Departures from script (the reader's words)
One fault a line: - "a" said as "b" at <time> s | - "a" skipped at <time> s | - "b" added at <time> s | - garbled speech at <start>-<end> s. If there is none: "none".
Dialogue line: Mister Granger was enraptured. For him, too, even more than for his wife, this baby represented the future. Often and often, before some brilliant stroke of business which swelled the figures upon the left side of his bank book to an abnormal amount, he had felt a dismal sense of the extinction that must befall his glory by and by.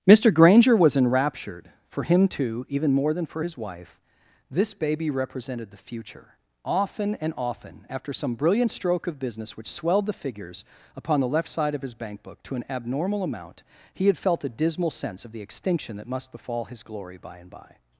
- "before" said as "after" at 7.9 s